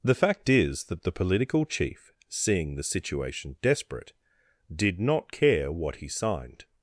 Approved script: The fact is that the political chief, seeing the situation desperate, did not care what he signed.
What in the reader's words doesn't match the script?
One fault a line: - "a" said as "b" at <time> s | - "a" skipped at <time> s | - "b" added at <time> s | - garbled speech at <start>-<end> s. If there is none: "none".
none